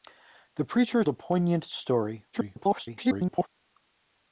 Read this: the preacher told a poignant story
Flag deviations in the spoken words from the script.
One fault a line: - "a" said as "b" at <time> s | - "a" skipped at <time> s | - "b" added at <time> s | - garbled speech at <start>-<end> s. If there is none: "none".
- "told" skipped at 1.0 s
- garbled speech at 2.3-3.5 s